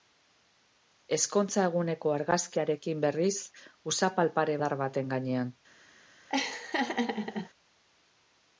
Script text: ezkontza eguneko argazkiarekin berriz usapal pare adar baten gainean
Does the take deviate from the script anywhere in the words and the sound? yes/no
yes